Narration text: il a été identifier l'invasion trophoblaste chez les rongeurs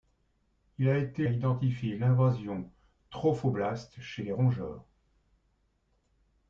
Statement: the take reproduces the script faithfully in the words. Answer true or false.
true